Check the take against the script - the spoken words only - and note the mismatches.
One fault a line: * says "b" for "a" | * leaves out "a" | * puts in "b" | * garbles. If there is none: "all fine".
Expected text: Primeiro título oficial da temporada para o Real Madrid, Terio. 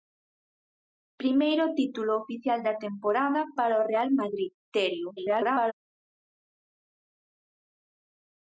* garbles